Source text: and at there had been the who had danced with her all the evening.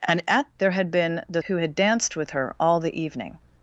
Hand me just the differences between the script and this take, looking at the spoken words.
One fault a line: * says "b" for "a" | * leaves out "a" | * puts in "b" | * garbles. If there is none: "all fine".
all fine